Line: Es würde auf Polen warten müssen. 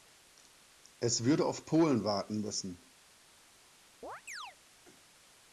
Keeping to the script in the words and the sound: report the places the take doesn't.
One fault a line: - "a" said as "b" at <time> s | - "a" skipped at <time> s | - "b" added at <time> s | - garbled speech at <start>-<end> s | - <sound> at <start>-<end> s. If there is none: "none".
- chirp at 4.0-4.6 s